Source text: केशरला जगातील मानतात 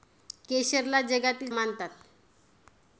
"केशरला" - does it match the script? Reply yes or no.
yes